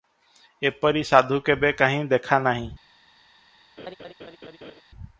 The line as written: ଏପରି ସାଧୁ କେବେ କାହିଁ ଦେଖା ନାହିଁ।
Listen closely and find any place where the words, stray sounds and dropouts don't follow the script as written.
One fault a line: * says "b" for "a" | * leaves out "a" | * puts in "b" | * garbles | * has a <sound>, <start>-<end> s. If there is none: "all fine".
* has a laugh, 3.8-4.8 s